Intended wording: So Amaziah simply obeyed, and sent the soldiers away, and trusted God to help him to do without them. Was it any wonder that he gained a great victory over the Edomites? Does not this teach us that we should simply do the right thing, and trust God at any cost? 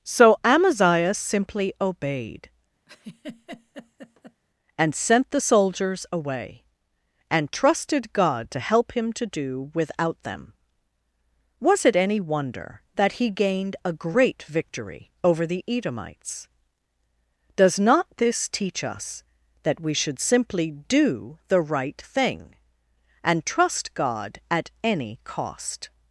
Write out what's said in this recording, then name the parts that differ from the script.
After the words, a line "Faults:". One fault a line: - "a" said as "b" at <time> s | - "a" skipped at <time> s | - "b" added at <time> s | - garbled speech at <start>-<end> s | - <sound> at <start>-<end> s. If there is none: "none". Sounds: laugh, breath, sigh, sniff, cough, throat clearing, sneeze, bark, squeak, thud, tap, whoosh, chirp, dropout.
So Amaziah simply obeyed, and sent the soldiers away, and trusted God to help him to do without them. Was it any wonder that he gained a great victory over the Edomites? Does not this teach us that we should simply do the right thing, and trust God at any cost?
Faults:
- laugh at 2.9-4.4 s